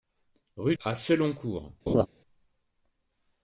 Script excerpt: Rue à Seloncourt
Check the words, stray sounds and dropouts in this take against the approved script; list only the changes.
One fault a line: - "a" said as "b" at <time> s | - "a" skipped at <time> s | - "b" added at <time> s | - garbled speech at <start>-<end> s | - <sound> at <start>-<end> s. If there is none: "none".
- laugh at 1.9-2.1 s